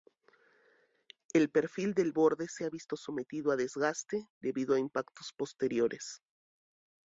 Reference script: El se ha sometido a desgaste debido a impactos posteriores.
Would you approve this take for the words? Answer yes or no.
no